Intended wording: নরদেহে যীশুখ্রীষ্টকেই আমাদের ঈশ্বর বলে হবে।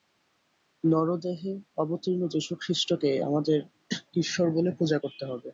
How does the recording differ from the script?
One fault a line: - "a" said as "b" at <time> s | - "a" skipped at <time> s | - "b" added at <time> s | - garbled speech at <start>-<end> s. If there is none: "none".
- "অবতীর্ণ" added at 1.8 s
- "পূজা করতে" added at 4.8 s